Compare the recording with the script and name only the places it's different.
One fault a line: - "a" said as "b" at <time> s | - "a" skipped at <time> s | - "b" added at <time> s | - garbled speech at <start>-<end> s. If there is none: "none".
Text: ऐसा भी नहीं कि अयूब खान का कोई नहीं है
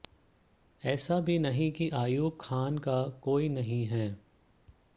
none